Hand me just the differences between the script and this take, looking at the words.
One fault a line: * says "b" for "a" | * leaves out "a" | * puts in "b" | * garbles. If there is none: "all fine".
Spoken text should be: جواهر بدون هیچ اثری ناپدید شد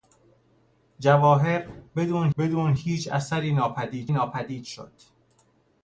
* puts in "بدون"
* puts in "ناپدید"